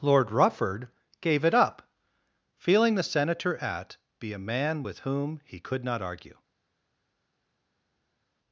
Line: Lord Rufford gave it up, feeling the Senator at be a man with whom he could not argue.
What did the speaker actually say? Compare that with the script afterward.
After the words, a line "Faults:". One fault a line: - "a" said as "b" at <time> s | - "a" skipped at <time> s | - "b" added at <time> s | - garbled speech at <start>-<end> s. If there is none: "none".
Lord Rufford gave it up, feeling the Senator at be a man with whom he could not argue.
Faults:
none